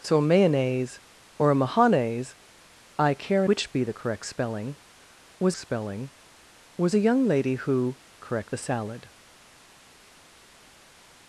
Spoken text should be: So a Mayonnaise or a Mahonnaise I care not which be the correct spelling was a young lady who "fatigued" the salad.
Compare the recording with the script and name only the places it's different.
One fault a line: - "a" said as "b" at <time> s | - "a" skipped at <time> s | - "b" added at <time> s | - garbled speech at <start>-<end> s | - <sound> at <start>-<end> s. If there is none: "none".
- "not" skipped at 3.5 s
- "spelling was" added at 5.6 s
- "fatigued" said as "correct" at 8.2 s